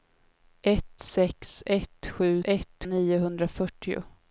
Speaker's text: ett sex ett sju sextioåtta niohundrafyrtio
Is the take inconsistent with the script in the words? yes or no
yes